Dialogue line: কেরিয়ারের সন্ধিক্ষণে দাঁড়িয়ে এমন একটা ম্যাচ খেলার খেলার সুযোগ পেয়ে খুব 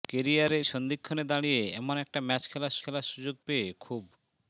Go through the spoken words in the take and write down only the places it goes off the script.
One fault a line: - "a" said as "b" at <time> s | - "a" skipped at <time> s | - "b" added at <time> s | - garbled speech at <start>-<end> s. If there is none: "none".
none